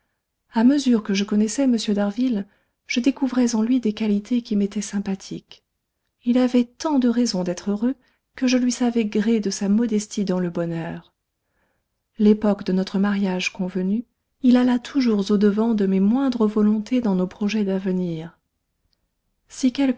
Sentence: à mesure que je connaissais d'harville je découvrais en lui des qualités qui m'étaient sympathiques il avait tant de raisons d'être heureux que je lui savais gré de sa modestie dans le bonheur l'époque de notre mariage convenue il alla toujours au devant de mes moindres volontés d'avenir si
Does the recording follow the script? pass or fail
fail